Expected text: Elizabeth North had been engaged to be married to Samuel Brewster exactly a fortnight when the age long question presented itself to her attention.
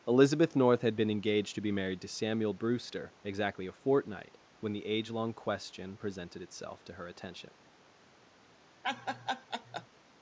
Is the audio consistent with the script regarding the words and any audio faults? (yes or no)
no